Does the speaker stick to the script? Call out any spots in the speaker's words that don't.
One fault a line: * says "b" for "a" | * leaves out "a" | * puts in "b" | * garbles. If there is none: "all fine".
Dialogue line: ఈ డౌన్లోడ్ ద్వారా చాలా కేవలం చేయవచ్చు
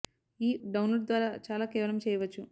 all fine